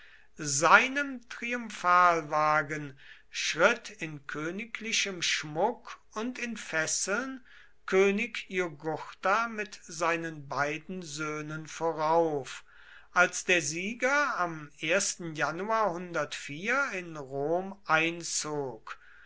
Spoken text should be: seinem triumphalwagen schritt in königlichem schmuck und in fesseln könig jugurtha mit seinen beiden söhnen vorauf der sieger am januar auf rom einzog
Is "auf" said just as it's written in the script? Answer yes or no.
no